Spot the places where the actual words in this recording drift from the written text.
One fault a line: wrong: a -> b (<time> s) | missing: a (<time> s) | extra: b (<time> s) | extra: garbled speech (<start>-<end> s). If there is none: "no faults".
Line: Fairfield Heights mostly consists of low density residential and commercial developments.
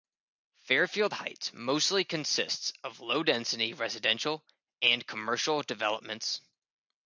no faults